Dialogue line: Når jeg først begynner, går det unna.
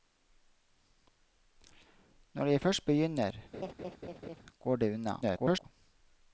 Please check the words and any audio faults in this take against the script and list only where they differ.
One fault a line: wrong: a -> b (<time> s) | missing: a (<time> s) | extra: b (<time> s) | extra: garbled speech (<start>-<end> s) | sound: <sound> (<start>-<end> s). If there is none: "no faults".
sound: laugh (3.5-4.4 s)
extra: garbled speech (5.2-5.6 s)